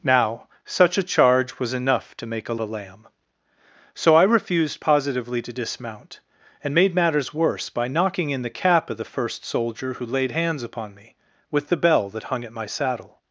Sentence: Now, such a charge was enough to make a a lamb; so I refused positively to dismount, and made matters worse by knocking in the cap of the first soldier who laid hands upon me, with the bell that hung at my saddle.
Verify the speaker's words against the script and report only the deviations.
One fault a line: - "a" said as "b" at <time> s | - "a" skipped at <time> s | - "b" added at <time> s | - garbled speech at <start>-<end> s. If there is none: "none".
none